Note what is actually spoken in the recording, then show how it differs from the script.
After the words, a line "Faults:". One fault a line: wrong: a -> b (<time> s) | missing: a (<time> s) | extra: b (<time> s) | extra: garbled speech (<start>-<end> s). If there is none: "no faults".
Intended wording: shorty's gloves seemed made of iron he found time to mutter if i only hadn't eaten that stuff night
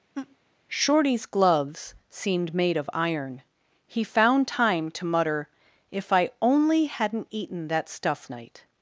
shorty's gloves seemed made of iron he found time to mutter if i only hadn't eaten that stuff night
Faults:
no faults